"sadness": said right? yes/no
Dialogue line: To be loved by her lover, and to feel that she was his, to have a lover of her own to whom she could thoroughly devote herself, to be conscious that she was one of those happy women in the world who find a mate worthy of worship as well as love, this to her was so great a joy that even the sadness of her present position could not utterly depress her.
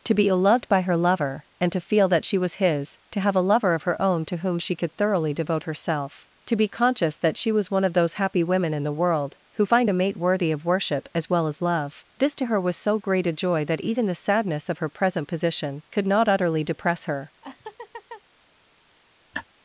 yes